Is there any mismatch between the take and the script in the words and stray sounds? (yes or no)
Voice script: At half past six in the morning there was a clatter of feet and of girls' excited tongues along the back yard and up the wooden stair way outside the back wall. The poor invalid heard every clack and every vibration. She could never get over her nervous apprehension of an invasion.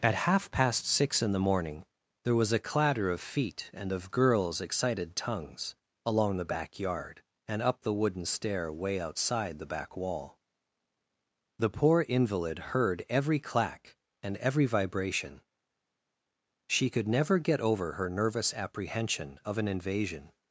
no